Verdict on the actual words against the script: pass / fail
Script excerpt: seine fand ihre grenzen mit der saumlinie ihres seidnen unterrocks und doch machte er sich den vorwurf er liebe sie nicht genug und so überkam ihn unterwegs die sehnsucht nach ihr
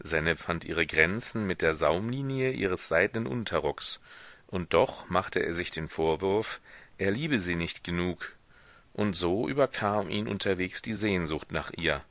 pass